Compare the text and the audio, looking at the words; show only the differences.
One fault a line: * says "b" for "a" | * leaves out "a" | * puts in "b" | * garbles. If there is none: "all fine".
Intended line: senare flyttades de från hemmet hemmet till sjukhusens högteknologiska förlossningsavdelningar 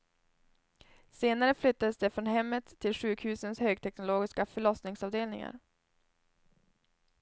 * leaves out "hemmet"